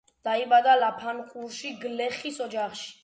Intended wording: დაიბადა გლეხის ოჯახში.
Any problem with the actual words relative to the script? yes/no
yes